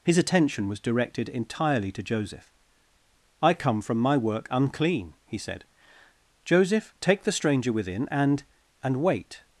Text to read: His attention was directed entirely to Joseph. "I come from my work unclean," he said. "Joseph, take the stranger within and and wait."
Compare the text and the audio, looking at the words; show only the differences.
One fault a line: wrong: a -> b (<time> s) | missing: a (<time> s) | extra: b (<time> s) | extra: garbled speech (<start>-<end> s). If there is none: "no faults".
no faults